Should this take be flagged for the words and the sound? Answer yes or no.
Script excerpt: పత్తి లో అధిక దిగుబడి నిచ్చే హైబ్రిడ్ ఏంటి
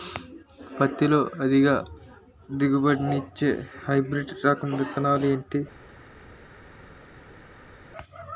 yes